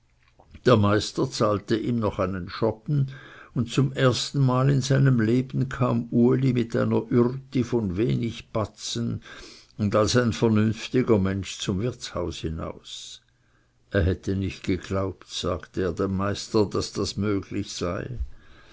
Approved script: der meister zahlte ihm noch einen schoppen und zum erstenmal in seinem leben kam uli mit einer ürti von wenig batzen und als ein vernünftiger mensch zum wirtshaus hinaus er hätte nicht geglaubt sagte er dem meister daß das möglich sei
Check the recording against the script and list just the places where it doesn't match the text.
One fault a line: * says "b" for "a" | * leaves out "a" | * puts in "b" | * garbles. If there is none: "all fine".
all fine